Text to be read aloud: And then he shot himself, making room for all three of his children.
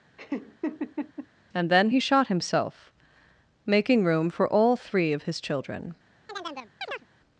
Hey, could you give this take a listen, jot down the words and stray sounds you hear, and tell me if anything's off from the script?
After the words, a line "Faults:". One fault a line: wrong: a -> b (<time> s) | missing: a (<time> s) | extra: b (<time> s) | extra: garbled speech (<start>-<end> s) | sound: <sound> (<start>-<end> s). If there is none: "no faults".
And then he shot himself, making room for all three of his children.
Faults:
sound: laugh (0.2-1.3 s)
sound: chirp (6.3-7.1 s)